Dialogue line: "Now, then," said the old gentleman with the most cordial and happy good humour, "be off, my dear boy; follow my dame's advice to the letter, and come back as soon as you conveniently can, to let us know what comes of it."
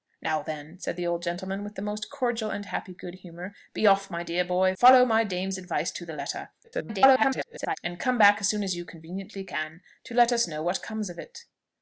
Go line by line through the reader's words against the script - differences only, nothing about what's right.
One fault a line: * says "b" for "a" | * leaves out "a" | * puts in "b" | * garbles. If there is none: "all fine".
* garbles